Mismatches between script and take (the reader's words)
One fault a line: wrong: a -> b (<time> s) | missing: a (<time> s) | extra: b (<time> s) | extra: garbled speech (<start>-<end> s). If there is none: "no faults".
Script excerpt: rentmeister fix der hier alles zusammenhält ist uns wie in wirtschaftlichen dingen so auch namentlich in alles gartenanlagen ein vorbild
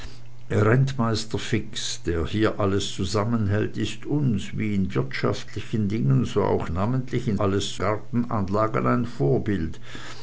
no faults